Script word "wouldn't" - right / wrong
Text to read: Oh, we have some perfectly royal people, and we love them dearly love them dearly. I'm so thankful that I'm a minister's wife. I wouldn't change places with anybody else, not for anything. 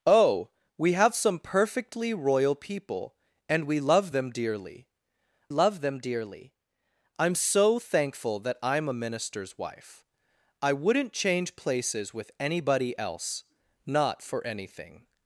right